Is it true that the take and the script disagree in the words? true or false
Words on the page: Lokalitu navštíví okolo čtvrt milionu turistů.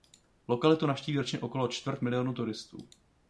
true